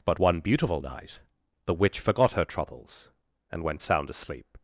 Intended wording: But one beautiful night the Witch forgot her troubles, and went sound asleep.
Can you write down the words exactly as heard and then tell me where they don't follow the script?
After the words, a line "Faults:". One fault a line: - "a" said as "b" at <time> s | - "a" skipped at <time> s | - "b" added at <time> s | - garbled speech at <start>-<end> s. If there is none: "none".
But one beautiful night the Witch forgot her troubles, and went sound asleep.
Faults:
none